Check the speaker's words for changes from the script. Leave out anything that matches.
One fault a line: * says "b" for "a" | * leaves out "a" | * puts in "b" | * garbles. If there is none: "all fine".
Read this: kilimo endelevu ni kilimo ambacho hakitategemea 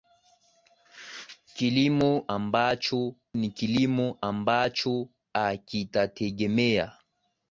* says "ambacho" for "endelevu"